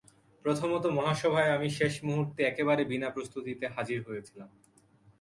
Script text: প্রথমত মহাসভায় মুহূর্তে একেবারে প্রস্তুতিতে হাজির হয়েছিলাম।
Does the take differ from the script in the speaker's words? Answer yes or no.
yes